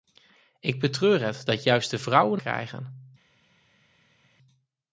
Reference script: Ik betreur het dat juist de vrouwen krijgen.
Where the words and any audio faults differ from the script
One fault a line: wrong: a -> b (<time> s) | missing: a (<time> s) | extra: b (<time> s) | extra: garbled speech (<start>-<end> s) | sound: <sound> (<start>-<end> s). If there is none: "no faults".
no faults